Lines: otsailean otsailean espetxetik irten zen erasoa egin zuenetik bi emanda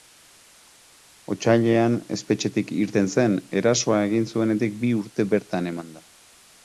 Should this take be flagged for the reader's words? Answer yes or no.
yes